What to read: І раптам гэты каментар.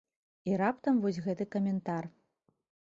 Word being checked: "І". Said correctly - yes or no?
yes